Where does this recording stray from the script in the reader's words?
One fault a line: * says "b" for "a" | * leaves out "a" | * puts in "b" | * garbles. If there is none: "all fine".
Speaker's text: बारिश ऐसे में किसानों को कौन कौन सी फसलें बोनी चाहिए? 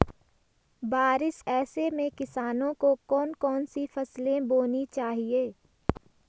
all fine